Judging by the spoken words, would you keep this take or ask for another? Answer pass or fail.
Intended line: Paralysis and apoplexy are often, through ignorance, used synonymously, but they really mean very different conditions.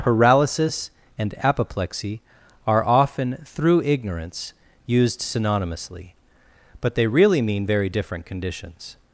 pass